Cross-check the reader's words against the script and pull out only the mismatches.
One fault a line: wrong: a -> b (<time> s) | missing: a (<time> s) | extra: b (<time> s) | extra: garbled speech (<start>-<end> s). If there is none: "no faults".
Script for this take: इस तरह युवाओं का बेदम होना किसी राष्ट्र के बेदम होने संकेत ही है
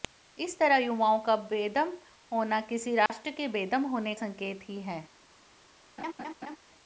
no faults